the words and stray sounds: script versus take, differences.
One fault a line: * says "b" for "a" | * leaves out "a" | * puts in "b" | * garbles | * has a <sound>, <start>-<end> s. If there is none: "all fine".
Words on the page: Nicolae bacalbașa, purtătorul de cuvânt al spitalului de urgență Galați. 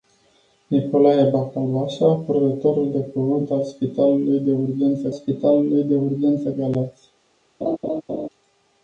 * puts in "spitalului de urgență"
* has a laugh, 7.6-8.3 s